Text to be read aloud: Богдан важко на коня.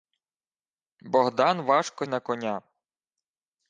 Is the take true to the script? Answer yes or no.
yes